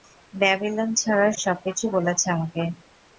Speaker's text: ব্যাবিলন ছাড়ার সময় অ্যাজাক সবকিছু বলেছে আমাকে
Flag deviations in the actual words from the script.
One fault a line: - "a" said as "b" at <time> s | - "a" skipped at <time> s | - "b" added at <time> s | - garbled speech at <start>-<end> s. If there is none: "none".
- "সময় অ্যাজাক" skipped at 1.3 s